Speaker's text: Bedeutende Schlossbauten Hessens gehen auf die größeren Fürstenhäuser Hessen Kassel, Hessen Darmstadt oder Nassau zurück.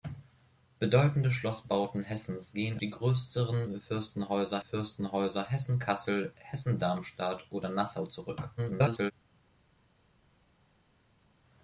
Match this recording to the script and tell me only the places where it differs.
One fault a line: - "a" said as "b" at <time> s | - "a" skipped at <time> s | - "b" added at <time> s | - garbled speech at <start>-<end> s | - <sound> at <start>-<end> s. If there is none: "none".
- "auf" skipped at 2.8 s
- "Fürstenhäuser" added at 4.6 s
- garbled speech at 8.6-9.1 s